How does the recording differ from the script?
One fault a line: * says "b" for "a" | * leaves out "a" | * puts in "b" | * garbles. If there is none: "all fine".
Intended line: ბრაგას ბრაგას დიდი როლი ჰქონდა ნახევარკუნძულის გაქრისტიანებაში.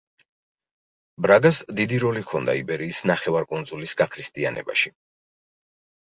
* leaves out "ბრაგას"
* puts in "იბერიის"